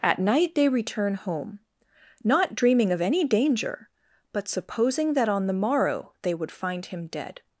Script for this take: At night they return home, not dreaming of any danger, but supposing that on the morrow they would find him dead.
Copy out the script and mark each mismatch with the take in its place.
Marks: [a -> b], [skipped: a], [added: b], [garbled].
At night they return home, not dreaming of any danger, but supposing that on the morrow they would find him dead.